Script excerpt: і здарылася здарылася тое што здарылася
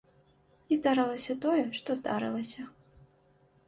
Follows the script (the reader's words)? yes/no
no